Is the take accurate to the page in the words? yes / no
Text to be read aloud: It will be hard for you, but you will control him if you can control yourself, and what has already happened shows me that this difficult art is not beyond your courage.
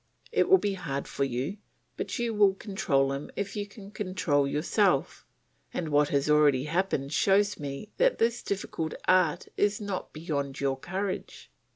yes